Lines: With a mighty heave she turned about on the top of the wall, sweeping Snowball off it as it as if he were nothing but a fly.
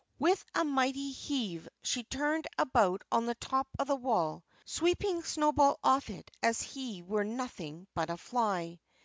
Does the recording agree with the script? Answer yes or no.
no